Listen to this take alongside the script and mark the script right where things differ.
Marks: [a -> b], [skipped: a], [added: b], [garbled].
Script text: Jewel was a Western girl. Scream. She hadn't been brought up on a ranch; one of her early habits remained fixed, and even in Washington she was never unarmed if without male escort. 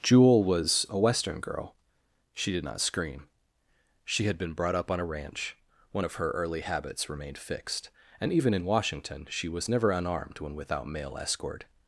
Jewel was a Western girl. [added: She did not] Scream. She [hadn't -> had] been brought up on a ranch; one of her early habits remained fixed, and even in Washington she was never unarmed [if -> when] without male escort.